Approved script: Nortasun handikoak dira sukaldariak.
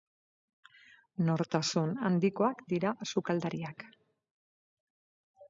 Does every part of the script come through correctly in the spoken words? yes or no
yes